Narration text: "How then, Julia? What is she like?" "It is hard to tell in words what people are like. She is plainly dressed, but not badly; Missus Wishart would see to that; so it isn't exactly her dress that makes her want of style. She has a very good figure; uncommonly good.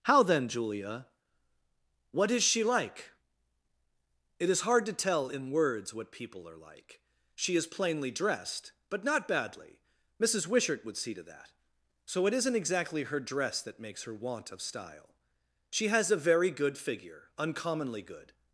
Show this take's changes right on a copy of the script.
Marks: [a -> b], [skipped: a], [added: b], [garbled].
"How then, Julia? What is she like?" "It is hard to tell in words what people are like. She is plainly dressed, but not badly; Missus Wishart would see to that; so it isn't exactly her dress that makes her want of style. She has a very good figure; uncommonly good.